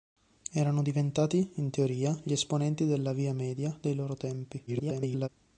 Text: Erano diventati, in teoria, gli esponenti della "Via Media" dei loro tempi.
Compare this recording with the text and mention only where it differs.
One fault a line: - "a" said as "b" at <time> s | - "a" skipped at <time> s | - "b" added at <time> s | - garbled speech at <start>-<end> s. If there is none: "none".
- garbled speech at 4.7-5.3 s